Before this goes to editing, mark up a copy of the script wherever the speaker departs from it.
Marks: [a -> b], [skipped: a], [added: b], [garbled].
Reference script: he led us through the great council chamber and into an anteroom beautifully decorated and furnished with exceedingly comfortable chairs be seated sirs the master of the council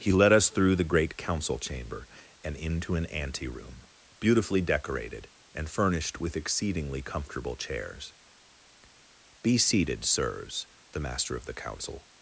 he led us through the great council chamber and into an anteroom beautifully decorated and furnished with exceedingly comfortable chairs be seated sirs the master of the council